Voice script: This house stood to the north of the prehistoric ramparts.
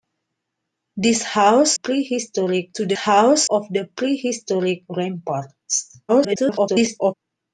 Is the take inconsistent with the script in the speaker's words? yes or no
yes